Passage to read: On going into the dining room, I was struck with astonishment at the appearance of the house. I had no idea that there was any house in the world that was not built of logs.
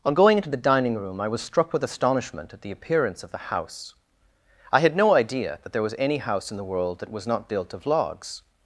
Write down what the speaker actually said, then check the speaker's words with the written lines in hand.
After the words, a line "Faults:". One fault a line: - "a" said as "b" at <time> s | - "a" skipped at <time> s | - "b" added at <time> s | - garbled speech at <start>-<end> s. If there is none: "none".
On going into the dining room, I was struck with astonishment at the appearance of the house. I had no idea that there was any house in the world that was not built of logs.
Faults:
none